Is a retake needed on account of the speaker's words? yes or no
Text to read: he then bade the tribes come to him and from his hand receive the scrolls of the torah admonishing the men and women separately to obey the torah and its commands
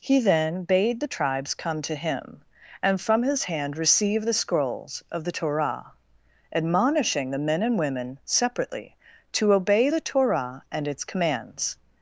no